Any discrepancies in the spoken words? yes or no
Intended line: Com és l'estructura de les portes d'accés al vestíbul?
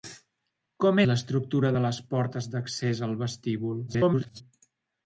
yes